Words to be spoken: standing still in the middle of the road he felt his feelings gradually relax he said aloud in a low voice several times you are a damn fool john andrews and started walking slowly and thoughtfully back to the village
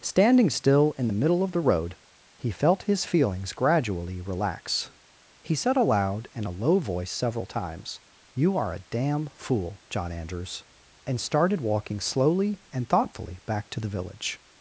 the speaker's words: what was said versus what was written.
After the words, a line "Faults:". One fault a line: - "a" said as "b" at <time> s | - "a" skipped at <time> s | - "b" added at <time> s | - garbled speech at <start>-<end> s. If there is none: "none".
standing still in the middle of the road he felt his feelings gradually relax he said aloud in a low voice several times you are a damn fool john andrews and started walking slowly and thoughtfully back to the village
Faults:
none